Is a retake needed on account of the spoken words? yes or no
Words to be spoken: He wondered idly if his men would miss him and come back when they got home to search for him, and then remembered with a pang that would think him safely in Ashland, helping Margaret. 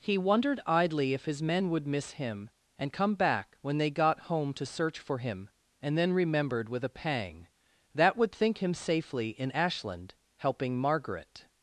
no